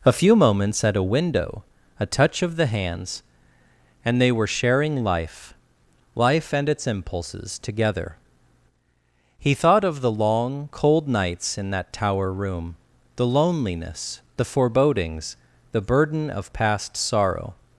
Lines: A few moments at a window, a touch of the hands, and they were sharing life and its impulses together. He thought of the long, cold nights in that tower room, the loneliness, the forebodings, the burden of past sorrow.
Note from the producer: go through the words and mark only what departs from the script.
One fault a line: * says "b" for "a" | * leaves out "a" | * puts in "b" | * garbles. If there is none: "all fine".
* puts in "life"